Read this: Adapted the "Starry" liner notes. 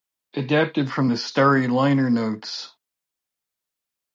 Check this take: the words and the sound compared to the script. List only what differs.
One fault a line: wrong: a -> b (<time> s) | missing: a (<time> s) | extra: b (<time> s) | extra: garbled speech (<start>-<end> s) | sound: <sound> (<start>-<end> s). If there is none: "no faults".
extra: from (0.9 s)